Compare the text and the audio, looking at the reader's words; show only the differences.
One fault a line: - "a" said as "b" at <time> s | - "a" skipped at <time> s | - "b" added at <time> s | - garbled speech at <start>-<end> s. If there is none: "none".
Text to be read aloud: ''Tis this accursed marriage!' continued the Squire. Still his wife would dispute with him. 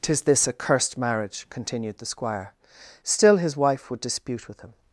none